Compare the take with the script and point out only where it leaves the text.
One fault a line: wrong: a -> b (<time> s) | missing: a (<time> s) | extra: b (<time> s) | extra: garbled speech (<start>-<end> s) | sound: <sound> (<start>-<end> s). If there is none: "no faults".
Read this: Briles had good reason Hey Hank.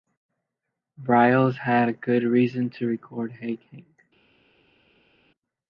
extra: to record (2.7 s)